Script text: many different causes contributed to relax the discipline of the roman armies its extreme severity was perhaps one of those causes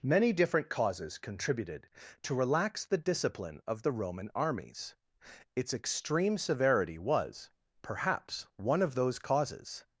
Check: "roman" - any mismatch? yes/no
no